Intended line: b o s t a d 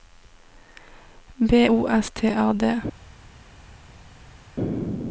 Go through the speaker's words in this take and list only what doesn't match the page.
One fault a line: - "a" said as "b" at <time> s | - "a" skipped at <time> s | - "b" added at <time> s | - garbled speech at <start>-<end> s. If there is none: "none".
none